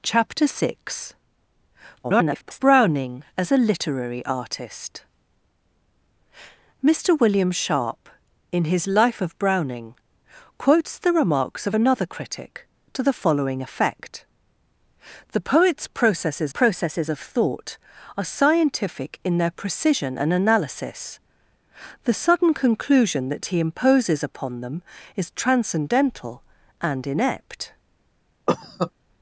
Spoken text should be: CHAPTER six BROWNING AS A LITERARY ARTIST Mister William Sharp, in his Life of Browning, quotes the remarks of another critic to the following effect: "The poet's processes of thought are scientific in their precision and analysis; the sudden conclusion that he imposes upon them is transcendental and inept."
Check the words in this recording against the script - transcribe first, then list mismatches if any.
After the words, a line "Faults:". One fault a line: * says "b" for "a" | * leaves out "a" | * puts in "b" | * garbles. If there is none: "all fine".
CHAPTER six [garbled] BROWNING AS A LITERARY ARTIST Mister William Sharp, in his Life of Browning, quotes the remarks of another critic to the following effect: "The poet's processes processes of thought are scientific in their precision and analysis; the sudden conclusion that he imposes upon them is transcendental and inept."
Faults:
* garbles
* puts in "processes"